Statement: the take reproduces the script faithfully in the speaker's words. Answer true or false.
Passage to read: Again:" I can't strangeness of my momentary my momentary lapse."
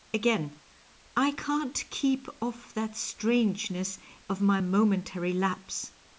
false